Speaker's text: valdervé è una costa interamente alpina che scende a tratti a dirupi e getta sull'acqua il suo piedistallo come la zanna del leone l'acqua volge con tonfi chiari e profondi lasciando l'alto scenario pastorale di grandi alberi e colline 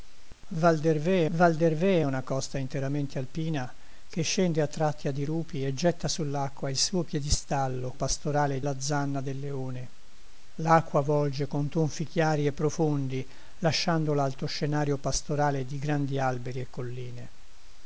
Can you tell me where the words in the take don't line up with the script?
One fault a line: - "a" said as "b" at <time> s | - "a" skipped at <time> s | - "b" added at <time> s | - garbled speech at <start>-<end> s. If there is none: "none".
- "valdervé" added at 1.3 s
- "come" said as "pastorale" at 7.9 s